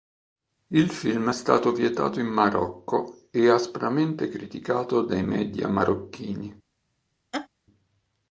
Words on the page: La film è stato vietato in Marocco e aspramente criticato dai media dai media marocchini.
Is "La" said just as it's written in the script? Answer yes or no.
no